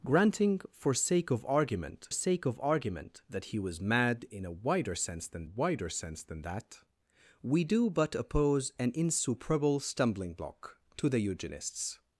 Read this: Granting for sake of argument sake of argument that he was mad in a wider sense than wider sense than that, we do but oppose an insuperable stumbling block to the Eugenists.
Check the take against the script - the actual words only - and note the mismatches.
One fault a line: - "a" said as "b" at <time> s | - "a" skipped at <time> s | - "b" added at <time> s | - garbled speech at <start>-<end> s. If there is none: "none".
none